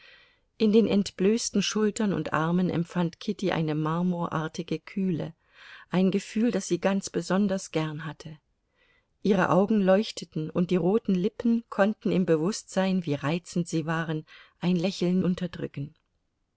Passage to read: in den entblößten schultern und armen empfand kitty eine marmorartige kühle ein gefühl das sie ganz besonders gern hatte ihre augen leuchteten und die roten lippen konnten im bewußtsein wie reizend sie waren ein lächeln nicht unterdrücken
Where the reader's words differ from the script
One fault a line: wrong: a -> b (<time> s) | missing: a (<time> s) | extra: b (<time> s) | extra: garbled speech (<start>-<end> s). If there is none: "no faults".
missing: nicht (15.2 s)